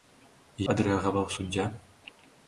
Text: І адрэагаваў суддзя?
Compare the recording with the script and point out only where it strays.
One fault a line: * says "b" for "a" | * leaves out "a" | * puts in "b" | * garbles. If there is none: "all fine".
all fine